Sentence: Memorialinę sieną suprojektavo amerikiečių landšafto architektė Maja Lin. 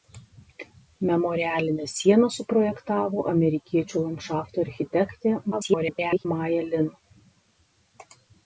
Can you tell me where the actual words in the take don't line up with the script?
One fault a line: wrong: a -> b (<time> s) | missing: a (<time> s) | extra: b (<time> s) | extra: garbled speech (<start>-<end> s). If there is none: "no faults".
extra: garbled speech (5.5-6.3 s)